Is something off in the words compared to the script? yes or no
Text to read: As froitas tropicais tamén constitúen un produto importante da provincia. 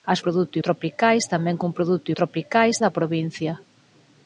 yes